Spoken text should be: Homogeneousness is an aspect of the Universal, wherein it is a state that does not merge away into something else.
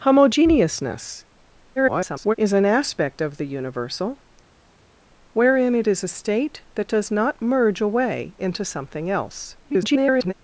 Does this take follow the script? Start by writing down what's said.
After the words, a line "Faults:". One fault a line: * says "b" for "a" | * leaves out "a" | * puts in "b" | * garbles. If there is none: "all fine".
Homogeneousness [garbled] is an aspect of the Universal, wherein it is a state that does not merge away into something else. [garbled]
Faults:
* garbles
* garbles